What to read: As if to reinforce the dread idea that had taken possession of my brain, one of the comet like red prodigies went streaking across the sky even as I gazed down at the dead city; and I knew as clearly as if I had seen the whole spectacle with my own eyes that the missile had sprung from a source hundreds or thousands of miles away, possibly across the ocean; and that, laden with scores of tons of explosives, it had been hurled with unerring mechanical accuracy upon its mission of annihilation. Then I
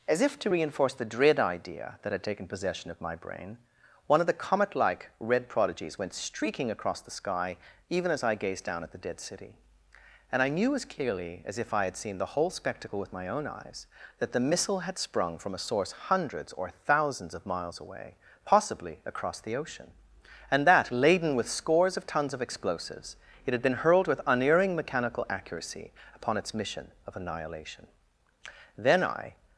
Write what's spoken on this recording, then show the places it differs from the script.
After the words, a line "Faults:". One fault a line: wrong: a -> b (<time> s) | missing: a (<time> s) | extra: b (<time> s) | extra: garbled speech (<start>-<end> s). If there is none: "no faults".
As if to reinforce the dread idea that had taken possession of my brain, one of the comet like red prodigies went streaking across the sky even as I gazed down at the dead city; and I knew as clearly as if I had seen the whole spectacle with my own eyes that the missile had sprung from a source hundreds or thousands of miles away, possibly across the ocean; and that, laden with scores of tons of explosives, it had been hurled with unerring mechanical accuracy upon its mission of annihilation. Then I
Faults:
no faults